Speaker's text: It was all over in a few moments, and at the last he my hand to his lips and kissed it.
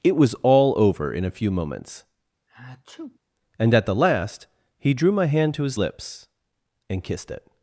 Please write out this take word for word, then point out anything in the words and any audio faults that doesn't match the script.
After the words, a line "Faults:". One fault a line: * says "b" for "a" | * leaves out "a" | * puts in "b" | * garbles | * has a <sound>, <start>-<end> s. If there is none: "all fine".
It was all over in a few moments, and at the last he drew my hand to his lips and kissed it.
Faults:
* has a sneeze, 2.5-3.2 s
* puts in "drew"